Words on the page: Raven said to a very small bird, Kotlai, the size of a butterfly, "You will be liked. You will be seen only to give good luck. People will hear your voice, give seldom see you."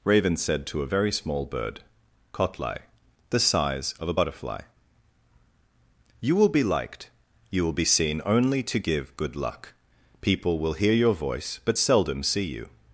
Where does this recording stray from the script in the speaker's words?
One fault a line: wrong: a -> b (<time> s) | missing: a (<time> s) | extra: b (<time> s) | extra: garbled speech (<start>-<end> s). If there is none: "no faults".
wrong: give -> but (11.6 s)